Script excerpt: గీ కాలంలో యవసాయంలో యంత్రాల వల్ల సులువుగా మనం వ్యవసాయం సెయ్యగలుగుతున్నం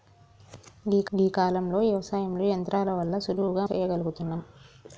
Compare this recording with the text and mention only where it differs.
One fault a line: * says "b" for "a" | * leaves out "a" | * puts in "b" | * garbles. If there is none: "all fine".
* puts in "గీ"
* leaves out "మనం వ్యవసాయం"